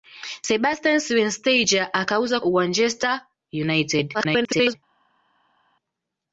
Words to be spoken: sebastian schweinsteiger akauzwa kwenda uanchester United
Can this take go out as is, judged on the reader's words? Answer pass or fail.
fail